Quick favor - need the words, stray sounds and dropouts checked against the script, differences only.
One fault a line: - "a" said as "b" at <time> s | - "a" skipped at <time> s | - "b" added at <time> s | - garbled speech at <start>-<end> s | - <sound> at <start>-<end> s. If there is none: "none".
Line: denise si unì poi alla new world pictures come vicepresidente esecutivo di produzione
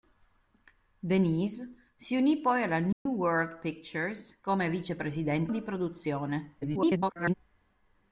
- dropout at 2.9-3.1 s
- "esecutivo" skipped at 5.5 s
- garbled speech at 6.6-7.3 s